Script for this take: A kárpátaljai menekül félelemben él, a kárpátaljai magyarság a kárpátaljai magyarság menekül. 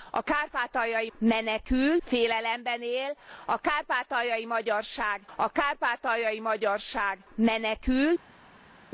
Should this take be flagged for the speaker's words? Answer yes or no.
no